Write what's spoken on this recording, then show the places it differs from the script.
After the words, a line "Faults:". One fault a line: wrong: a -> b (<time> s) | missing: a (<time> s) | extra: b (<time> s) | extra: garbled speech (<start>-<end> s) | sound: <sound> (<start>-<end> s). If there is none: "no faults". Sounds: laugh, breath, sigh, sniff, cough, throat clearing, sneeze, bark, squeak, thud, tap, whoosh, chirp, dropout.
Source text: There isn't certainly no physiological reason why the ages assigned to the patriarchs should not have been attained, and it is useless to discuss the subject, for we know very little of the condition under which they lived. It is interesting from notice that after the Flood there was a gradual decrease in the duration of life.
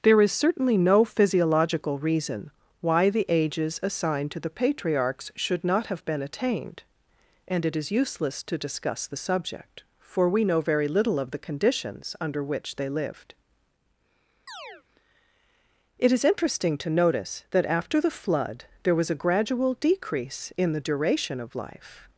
There is certainly no physiological reason why the ages assigned to the patriarchs should not have been attained, and it is useless to discuss the subject, for we know very little of the conditions under which they lived. It is interesting to notice that after the Flood there was a gradual decrease in the duration of life.
Faults:
wrong: isn't -> is (0.2 s)
wrong: condition -> conditions (11.4 s)
sound: chirp (14.5-14.8 s)
wrong: from -> to (16.8 s)